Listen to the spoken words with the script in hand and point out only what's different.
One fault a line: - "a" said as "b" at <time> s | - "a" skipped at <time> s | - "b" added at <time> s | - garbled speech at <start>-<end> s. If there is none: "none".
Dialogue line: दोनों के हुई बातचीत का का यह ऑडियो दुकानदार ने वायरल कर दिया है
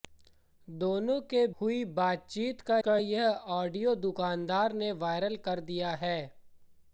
none